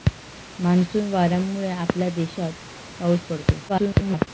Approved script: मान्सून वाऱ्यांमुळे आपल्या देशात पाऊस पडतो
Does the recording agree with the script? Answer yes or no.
no